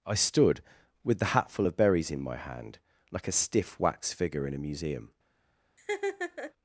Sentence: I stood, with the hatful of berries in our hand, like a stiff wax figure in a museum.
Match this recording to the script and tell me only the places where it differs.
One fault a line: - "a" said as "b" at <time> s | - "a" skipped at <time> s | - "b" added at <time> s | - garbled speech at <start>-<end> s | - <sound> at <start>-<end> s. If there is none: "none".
- "our" said as "my" at 2.2 s
- laugh at 5.8-6.5 s